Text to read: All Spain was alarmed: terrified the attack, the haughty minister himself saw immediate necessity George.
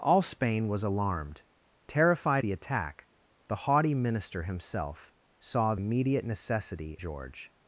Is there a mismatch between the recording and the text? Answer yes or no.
no